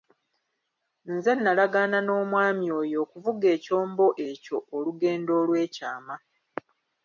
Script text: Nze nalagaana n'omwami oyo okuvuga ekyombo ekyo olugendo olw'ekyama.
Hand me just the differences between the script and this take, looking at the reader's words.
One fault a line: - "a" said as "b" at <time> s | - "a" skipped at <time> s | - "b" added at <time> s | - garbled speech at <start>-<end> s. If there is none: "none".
none